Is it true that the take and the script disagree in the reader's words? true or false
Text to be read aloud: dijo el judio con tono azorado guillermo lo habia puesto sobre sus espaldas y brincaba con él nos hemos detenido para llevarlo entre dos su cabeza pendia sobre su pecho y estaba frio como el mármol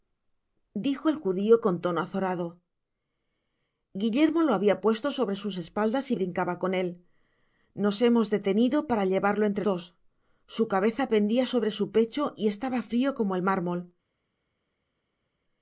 false